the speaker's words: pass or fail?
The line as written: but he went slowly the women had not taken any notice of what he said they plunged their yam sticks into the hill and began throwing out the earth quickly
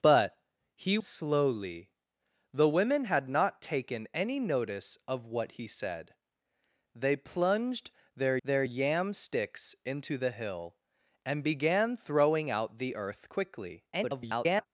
fail